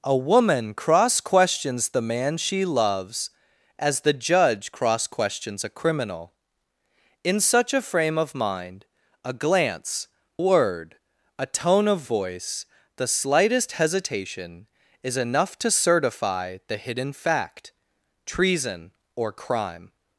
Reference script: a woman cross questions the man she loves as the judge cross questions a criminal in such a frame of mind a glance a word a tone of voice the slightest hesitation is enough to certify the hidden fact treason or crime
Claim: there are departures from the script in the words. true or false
true